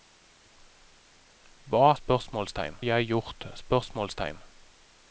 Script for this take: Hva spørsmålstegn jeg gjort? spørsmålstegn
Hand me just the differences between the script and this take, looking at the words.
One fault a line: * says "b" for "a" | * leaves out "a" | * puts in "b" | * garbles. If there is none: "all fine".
all fine